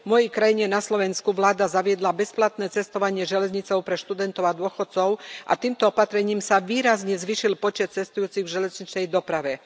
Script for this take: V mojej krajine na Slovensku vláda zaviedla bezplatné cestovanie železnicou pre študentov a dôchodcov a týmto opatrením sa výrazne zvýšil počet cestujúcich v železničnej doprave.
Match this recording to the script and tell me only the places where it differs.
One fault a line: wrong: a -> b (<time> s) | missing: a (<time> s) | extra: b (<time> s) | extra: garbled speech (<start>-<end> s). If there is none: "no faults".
no faults